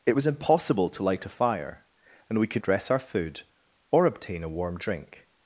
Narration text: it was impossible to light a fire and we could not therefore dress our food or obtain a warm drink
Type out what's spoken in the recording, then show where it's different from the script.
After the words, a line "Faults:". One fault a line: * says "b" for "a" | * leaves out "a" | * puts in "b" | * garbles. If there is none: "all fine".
it was impossible to light a fire and we could dress our food or obtain a warm drink
Faults:
* leaves out "not therefore"